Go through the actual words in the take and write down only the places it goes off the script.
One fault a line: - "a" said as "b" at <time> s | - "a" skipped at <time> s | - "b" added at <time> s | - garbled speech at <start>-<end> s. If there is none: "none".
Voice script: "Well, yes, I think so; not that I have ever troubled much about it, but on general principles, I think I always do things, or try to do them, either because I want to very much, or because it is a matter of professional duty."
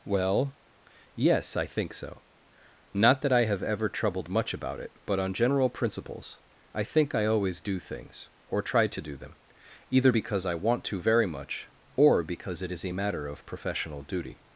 none